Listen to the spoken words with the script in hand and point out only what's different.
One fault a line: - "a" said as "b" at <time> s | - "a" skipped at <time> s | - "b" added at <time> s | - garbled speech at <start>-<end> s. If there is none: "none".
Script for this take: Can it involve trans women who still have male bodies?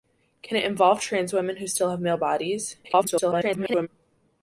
- garbled speech at 2.8-3.9 s